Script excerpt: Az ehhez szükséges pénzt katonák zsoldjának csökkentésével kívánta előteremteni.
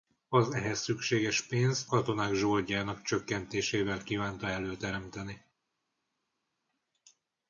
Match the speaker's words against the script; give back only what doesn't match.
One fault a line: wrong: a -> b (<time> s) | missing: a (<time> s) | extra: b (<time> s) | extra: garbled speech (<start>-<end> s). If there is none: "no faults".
no faults